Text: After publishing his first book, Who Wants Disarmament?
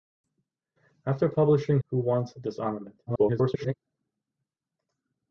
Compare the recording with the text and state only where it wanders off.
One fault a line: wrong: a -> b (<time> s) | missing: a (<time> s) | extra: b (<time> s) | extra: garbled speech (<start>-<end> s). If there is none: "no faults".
missing: his first book (1.8 s)
extra: garbled speech (3.1-3.7 s)